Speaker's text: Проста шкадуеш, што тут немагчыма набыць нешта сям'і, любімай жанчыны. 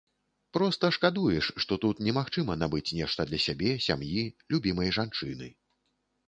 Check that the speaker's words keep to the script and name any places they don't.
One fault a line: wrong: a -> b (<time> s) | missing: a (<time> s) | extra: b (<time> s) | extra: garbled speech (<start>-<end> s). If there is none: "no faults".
extra: для сябе (3.3 s)